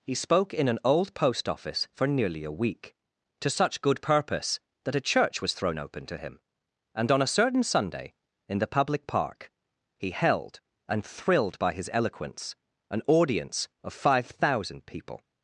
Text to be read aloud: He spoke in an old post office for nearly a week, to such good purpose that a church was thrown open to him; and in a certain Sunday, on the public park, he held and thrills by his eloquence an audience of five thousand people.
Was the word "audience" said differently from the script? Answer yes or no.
no